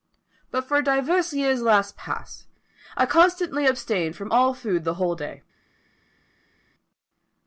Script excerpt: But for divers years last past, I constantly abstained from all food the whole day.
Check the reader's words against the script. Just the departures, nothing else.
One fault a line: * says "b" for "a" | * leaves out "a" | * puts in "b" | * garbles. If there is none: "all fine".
all fine